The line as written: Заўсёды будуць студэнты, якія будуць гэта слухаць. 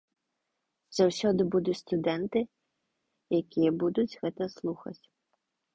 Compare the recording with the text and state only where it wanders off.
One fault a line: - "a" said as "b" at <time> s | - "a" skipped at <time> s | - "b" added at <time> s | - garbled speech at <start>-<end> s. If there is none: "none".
none